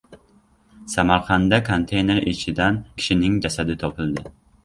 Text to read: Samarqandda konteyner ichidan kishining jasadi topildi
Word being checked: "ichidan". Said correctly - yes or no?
yes